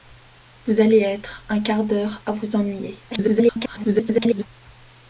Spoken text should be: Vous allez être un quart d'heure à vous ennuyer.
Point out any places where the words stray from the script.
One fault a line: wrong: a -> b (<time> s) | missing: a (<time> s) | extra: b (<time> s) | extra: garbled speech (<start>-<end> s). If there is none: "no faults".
extra: garbled speech (3.1-4.5 s)